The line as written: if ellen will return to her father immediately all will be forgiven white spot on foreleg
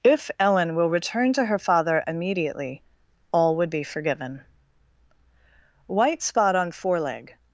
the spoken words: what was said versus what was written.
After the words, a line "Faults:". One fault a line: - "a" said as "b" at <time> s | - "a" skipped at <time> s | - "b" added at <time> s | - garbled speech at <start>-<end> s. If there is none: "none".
if ellen will return to her father immediately all would be forgiven white spot on foreleg
Faults:
- "will" said as "would" at 3.6 s